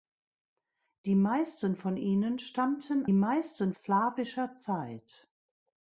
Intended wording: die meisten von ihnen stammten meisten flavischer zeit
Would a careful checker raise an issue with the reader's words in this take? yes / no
no